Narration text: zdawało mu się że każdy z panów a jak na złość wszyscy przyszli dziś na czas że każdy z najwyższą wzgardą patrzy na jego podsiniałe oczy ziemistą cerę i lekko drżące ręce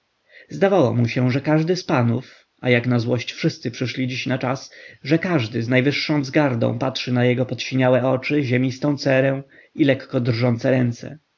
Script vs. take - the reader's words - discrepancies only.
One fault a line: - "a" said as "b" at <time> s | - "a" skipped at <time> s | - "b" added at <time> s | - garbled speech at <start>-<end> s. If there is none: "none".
none